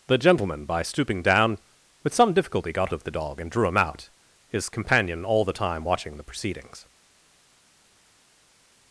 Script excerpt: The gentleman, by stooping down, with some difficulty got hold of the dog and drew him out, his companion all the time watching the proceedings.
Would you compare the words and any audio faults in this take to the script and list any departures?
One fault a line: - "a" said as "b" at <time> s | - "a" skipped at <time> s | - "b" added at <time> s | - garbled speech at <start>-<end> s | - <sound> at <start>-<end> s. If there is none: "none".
- "hold" skipped at 2.9 s